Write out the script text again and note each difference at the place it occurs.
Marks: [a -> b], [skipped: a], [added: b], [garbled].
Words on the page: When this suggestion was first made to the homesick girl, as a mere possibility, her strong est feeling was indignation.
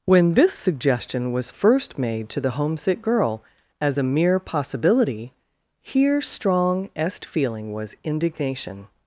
When this suggestion was first made to the homesick girl, as a mere possibility, [her -> here] strong est feeling was indignation.